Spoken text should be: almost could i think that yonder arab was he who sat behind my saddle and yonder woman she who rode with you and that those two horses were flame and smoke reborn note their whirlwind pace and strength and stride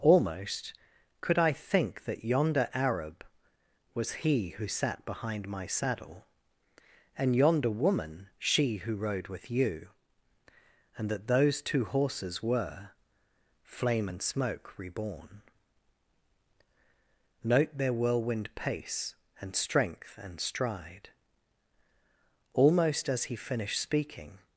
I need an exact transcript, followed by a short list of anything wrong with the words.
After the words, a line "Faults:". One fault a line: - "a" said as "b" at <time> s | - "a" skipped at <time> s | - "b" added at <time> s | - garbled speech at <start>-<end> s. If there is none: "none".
almost could i think that yonder arab was he who sat behind my saddle and yonder woman she who rode with you and that those two horses were flame and smoke reborn note their whirlwind pace and strength and stride almost as he finished speaking
Faults:
- "almost as he finished speaking" added at 22.5 s